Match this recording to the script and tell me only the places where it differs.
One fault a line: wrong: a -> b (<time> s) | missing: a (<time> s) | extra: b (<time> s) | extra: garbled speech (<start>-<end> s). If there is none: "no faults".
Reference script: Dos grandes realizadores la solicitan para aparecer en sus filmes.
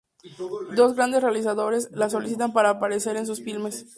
no faults